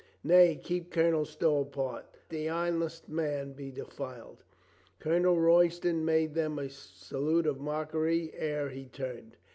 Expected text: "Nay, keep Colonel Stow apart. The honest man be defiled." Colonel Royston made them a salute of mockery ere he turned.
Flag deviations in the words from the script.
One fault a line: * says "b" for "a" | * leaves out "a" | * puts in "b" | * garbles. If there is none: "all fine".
all fine